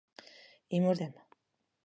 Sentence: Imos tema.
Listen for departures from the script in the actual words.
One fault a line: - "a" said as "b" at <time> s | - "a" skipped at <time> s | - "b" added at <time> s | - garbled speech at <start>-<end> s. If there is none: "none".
none